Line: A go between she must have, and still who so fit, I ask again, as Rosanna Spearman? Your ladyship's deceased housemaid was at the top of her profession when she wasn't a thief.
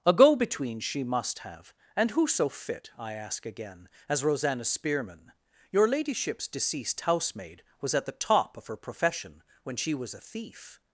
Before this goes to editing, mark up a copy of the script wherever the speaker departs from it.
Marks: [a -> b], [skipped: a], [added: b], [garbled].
A go between she must have, and [skipped: still] who so fit, I ask again, as Rosanna Spearman? Your ladyship's deceased housemaid was at the top of her profession when she [wasn't -> was] a thief.